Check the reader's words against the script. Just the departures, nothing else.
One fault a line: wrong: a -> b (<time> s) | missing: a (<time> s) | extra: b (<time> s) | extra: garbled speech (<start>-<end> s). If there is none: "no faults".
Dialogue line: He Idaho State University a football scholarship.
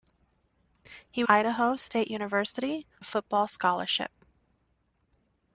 no faults